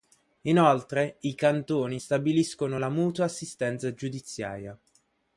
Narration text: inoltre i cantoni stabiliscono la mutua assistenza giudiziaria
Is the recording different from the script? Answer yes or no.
no